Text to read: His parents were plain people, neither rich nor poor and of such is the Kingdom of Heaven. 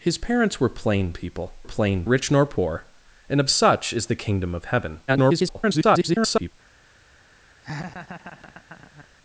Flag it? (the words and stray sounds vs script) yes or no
yes